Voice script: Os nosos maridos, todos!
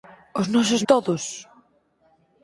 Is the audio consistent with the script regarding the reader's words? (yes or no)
no